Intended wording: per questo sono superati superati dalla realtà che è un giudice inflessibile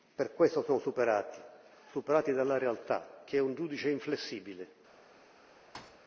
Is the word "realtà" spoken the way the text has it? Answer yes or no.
yes